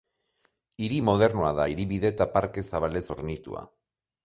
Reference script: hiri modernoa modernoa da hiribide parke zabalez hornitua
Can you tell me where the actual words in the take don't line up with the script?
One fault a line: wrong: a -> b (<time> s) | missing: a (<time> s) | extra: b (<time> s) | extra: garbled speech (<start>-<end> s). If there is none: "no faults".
missing: modernoa (1.5 s)
extra: eta (2.1 s)